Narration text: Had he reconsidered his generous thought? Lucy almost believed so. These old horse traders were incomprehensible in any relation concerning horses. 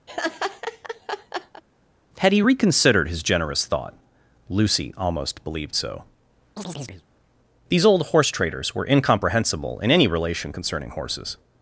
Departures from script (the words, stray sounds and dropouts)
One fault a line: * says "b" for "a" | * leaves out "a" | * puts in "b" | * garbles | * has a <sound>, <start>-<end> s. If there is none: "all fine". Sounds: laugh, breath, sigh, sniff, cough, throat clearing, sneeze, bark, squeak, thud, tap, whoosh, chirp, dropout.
* has a laugh, 0.1-1.6 s
* has a chirp, 6.6-7.0 s